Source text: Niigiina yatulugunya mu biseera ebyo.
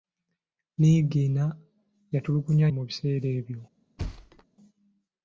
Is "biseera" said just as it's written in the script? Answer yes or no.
yes